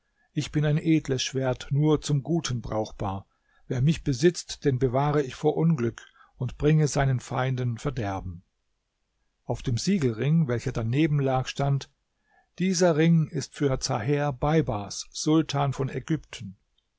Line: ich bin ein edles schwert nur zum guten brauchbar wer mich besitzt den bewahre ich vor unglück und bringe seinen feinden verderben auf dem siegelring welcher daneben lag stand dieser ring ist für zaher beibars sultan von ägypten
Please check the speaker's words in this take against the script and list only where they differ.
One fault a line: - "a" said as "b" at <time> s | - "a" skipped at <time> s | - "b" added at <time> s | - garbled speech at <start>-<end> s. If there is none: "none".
none